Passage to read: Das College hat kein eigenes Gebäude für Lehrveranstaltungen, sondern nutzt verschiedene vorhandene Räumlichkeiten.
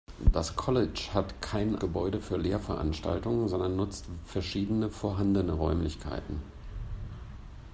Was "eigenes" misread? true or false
true